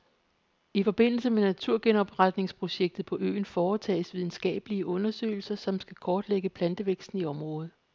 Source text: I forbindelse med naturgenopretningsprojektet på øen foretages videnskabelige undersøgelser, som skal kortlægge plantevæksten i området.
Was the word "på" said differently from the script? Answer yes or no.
no